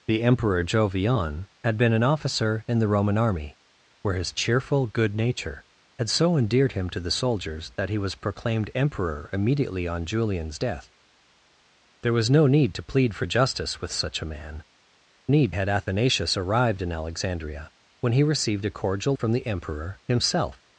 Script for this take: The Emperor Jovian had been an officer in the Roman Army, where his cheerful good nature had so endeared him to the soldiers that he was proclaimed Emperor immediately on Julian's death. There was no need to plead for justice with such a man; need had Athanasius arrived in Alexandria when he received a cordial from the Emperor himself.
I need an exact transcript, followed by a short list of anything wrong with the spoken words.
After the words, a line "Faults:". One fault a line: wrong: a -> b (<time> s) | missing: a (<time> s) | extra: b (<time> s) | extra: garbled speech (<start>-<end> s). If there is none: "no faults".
The Emperor Jovian had been an officer in the Roman Army, where his cheerful good nature had so endeared him to the soldiers that he was proclaimed Emperor immediately on Julian's death. There was no need to plead for justice with such a man; need had Athanasius arrived in Alexandria when he received a cordial from the Emperor himself.
Faults:
no faults